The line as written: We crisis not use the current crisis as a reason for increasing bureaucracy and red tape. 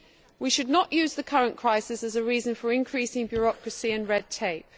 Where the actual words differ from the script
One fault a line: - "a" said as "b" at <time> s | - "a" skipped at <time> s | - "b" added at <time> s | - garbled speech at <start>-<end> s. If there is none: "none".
- "crisis" said as "should" at 0.5 s